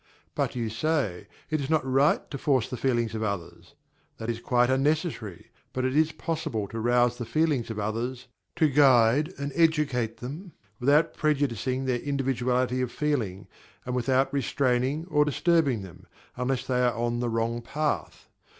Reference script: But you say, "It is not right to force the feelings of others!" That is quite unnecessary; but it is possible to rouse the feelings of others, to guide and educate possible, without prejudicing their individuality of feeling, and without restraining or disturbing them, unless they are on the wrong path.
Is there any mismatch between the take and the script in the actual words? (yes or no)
yes